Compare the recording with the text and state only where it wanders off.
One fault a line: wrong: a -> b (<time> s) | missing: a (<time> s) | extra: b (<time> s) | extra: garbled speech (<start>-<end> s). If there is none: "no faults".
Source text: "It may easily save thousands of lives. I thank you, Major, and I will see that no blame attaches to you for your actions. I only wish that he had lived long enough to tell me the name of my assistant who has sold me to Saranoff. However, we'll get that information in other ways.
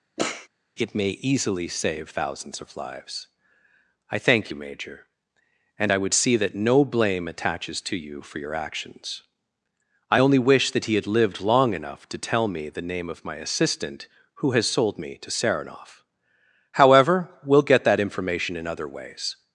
wrong: will -> would (6.0 s)